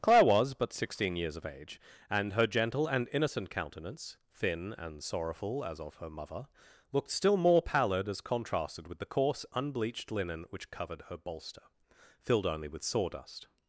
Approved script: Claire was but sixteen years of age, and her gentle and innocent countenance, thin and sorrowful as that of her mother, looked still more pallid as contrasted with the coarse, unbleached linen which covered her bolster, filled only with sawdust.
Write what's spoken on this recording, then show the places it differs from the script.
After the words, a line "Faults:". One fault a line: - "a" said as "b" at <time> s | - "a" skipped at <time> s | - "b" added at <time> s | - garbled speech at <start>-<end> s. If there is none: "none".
Claire was but sixteen years of age, and her gentle and innocent countenance, thin and sorrowful as of her mother, looked still more pallid as contrasted with the coarse, unbleached linen which covered her bolster, filled only with sawdust.
Faults:
- "that" skipped at 5.8 s